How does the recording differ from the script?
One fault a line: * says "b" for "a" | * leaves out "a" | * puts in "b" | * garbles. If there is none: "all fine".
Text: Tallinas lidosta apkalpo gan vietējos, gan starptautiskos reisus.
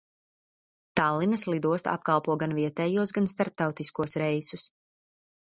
all fine